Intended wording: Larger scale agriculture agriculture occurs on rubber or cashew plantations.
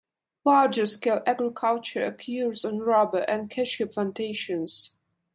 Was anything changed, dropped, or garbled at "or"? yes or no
yes